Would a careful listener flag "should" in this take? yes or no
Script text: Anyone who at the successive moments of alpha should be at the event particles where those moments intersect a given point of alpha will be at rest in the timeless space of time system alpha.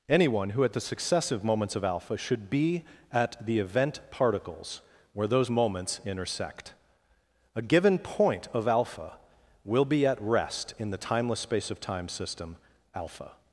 no